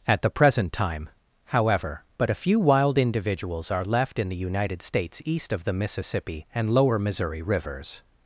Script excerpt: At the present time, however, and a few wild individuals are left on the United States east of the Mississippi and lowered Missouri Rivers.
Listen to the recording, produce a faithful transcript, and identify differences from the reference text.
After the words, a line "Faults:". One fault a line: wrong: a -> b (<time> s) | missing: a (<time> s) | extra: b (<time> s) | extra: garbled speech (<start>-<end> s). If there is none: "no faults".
At the present time, however, but a few wild individuals are left in the United States east of the Mississippi and lower Missouri Rivers.
Faults:
wrong: and -> but (2.2 s)
wrong: on -> in (4.2 s)
wrong: lowered -> lower (6.7 s)